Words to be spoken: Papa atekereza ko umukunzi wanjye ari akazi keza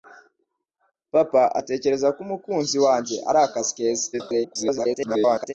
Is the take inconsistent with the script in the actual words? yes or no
yes